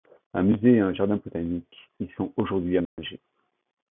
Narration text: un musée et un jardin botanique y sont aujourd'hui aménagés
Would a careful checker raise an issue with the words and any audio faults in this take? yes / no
yes